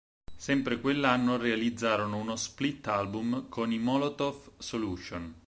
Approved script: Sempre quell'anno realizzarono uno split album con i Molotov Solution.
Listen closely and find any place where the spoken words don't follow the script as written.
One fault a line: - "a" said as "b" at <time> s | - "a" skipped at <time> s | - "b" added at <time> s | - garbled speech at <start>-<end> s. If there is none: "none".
none